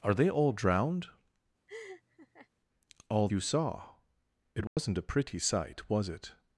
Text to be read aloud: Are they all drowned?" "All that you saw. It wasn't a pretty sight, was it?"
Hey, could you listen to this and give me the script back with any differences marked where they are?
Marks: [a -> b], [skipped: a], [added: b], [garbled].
Are they all drowned?" "All [skipped: that] you saw. It wasn't a pretty sight, was it?"